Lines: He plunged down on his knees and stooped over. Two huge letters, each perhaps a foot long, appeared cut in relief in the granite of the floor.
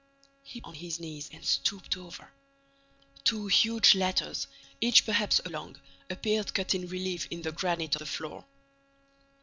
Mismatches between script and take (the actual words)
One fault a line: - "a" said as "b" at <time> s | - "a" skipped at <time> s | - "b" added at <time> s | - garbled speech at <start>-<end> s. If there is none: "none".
- "plunged down" skipped at 0.6 s
- "foot" skipped at 5.5 s
- "of" skipped at 7.9 s